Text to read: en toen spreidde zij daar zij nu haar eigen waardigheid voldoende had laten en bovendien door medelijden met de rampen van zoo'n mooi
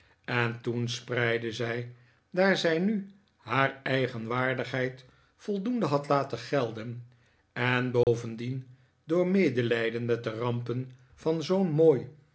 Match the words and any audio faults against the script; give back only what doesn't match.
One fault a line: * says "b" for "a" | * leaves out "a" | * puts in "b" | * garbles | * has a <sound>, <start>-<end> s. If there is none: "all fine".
* puts in "gelden"
* has a dropout, 8.0-8.1 s